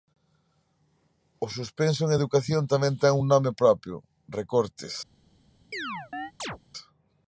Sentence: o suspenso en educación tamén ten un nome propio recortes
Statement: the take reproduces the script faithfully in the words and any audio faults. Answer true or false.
false